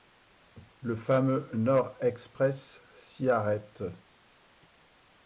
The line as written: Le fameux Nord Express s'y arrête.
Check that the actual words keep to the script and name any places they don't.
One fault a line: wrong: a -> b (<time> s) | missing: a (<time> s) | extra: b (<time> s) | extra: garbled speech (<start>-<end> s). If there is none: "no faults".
no faults